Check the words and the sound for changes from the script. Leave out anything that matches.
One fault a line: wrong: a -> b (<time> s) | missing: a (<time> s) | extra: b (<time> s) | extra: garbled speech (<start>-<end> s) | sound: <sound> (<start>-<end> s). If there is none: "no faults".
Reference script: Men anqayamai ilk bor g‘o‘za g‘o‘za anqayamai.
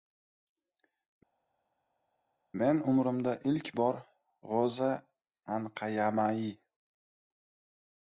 wrong: anqayamai -> umrimda (2.9 s)
missing: g‘o‘za (4.9 s)